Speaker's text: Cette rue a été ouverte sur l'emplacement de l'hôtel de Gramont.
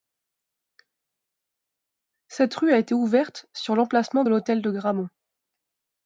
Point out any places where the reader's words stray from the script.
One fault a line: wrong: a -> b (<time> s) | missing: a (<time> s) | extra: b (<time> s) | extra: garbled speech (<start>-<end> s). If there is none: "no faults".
no faults